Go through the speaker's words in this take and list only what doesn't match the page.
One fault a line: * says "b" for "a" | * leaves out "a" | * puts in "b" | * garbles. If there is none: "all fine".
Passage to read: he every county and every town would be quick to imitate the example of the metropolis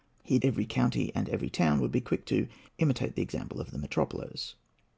all fine